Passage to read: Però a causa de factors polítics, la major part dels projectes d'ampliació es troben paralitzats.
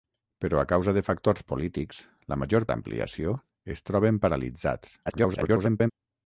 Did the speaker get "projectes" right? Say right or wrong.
wrong